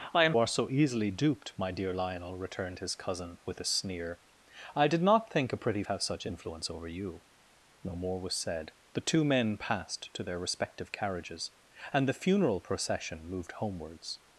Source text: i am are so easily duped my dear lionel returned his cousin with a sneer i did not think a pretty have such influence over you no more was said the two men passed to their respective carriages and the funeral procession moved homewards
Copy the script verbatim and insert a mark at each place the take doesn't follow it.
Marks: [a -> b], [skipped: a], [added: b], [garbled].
i am are so easily duped my dear lionel returned his cousin with a sneer i did not think a pretty have such influence over you no more was said the two men passed to their respective carriages and the funeral procession moved homewards